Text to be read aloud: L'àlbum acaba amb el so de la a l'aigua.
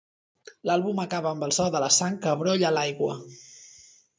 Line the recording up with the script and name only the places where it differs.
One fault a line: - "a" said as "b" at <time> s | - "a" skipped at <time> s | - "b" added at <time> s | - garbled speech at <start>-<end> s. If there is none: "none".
- "sang que brolla" added at 2.0 s